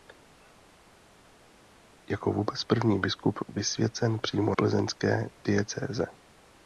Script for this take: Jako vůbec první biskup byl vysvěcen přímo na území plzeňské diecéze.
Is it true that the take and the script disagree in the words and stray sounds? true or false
true